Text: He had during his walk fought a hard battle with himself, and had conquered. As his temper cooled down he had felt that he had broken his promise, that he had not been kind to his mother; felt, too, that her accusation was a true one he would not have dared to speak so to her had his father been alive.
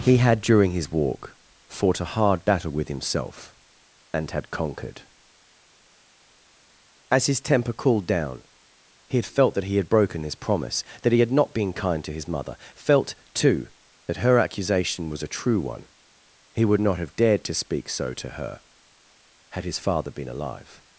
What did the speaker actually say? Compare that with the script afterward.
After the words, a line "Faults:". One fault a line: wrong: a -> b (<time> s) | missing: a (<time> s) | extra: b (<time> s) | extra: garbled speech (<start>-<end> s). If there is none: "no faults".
He had during his walk fought a hard battle with himself, and had conquered. As his temper cooled down he had felt that he had broken his promise, that he had not been kind to his mother; felt, too, that her accusation was a true one he would not have dared to speak so to her had his father been alive.
Faults:
no faults